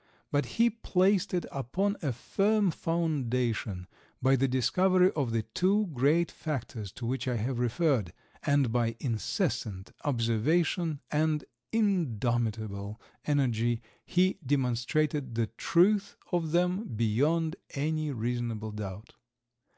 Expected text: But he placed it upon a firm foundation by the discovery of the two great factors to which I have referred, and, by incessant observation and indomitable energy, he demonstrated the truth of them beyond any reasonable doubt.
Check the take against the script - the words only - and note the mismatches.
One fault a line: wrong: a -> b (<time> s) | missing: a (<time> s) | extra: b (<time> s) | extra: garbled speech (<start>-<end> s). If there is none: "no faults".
no faults